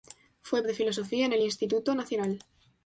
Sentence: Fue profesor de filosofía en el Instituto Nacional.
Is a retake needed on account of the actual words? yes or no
yes